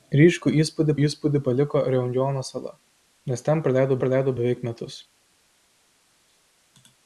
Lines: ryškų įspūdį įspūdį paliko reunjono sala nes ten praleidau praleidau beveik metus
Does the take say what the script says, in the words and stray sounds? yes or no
yes